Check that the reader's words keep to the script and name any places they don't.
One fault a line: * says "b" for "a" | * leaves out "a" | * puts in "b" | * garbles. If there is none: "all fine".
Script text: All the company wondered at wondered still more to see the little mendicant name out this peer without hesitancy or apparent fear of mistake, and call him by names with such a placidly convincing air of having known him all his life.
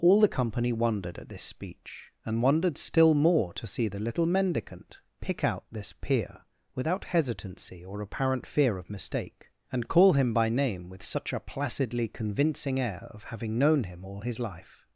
* puts in "this speech and"
* says "pick" for "name"
* says "name" for "names"